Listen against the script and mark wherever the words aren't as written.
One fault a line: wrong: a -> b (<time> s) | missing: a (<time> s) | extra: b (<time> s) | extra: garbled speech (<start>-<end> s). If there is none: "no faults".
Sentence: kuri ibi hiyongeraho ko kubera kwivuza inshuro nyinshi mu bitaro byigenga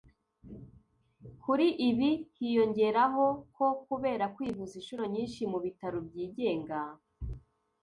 no faults